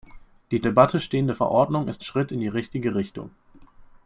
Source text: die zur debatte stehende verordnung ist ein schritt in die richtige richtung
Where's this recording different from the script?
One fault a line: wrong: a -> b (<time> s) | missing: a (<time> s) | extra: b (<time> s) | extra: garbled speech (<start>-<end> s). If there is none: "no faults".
missing: zur (0.6 s)
missing: ein (2.0 s)